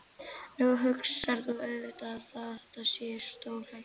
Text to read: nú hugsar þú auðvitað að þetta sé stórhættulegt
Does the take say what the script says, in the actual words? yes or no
yes